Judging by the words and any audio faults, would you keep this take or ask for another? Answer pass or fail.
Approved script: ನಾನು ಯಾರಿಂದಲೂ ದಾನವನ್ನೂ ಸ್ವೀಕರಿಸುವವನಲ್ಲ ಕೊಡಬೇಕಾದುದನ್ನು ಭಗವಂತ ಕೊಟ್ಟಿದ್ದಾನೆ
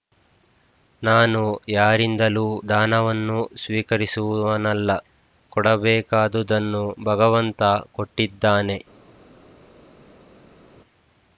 pass